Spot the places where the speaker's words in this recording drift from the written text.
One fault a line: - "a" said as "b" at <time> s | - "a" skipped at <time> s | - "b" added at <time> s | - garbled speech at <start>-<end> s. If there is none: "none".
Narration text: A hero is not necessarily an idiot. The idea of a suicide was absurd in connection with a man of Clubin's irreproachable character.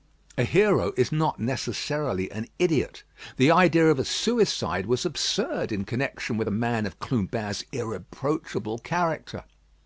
none